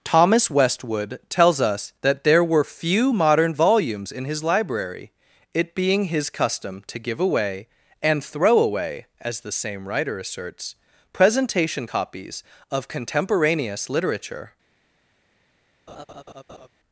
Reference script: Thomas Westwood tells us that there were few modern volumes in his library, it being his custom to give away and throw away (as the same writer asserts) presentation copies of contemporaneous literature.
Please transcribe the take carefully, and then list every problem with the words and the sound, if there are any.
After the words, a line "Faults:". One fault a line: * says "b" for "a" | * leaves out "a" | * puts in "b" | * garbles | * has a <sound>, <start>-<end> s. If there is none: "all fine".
Thomas Westwood tells us that there were few modern volumes in his library, it being his custom to give away and throw away (as the same writer asserts) presentation copies of contemporaneous literature.
Faults:
* has a laugh, 15.9-16.7 s